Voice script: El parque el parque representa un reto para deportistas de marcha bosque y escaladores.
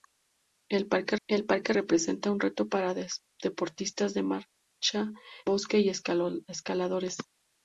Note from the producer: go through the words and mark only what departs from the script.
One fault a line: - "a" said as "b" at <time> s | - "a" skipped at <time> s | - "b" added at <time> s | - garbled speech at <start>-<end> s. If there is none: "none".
none